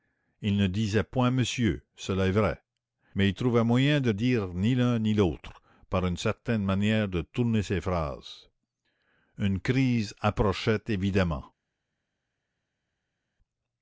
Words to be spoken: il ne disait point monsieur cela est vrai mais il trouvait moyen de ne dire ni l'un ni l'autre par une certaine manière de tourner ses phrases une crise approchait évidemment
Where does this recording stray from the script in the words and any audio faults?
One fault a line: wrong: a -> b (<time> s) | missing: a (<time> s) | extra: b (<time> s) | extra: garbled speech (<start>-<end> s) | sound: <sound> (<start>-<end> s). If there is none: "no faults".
missing: ne (4.1 s)